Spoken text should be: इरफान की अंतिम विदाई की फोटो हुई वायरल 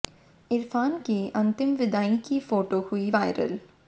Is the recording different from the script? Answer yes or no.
no